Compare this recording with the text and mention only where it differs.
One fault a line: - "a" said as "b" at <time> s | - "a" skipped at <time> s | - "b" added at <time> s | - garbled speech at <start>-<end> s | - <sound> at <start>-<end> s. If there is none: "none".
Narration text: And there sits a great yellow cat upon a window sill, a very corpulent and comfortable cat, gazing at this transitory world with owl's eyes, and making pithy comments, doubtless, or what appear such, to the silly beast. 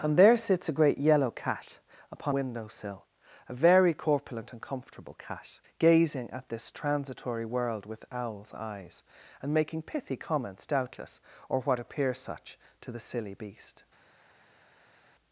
- "a" skipped at 2.4 s